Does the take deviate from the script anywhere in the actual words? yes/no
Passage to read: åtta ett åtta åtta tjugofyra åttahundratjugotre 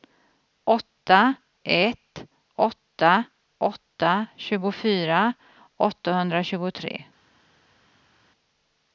no